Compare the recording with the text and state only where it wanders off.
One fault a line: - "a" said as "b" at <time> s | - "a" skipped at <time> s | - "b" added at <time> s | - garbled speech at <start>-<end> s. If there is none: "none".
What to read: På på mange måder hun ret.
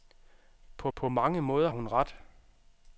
none